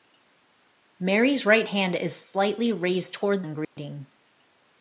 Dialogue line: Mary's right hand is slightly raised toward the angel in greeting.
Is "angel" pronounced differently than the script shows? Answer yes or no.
yes